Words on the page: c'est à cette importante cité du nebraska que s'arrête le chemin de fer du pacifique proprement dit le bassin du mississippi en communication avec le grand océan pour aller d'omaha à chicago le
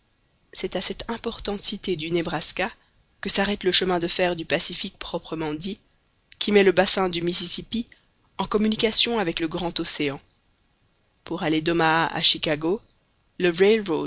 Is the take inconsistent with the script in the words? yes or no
yes